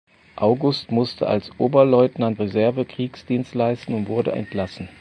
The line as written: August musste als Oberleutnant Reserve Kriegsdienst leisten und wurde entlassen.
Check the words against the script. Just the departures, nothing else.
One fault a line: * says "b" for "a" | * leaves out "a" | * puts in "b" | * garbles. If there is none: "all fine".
all fine